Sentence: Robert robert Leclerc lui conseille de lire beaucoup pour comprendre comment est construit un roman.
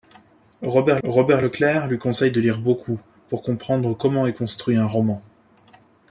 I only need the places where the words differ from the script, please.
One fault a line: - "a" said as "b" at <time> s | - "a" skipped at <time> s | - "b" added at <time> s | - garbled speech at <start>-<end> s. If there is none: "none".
none